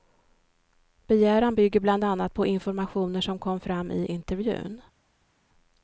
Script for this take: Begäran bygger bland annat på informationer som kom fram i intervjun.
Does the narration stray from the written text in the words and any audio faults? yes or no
no